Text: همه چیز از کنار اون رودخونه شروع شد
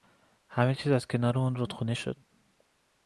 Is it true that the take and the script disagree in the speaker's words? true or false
true